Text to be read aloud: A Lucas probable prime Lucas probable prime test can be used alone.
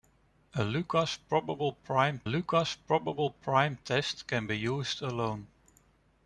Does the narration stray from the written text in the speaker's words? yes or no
no